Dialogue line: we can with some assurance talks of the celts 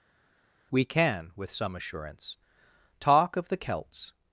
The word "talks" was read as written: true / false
false